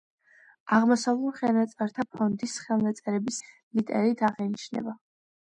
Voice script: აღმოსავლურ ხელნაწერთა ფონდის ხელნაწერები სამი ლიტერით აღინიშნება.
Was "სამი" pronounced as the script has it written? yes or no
no